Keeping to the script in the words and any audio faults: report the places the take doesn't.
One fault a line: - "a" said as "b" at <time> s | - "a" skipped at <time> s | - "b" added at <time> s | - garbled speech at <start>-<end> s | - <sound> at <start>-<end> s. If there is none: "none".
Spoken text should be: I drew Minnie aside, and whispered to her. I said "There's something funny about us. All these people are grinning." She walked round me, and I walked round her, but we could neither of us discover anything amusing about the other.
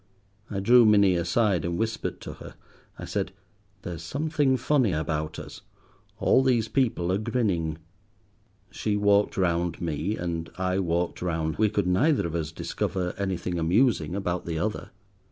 - "her but" skipped at 11.6 s